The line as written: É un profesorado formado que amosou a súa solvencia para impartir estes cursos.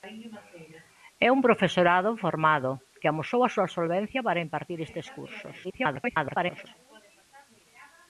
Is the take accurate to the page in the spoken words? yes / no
no